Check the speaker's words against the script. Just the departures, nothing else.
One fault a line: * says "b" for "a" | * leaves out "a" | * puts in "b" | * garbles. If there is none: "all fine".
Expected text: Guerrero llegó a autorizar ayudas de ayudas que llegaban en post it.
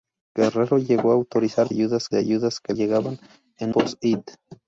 all fine